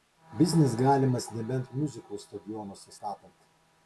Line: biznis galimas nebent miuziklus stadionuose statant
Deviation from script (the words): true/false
false